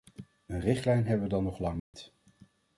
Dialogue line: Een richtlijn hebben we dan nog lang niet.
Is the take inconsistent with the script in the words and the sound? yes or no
yes